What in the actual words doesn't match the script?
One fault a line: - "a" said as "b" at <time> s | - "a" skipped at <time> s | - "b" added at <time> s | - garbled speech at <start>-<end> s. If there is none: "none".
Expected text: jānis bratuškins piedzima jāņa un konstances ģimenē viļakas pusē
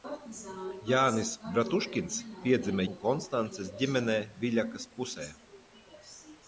- "jāņa" skipped at 2.9 s